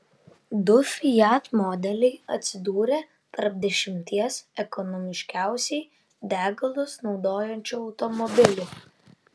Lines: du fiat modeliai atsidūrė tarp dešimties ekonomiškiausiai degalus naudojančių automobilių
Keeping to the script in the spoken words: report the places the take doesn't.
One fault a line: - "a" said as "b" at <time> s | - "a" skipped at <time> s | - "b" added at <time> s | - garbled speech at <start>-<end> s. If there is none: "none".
none